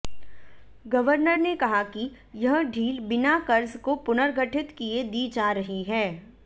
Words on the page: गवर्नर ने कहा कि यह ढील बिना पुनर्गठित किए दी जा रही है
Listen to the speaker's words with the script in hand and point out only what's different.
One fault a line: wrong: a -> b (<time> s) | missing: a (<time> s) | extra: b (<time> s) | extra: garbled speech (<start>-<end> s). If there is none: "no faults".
extra: कर्ज को (3.5 s)